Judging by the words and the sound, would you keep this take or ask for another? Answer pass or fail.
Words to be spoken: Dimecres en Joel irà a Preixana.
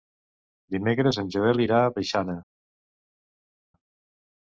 pass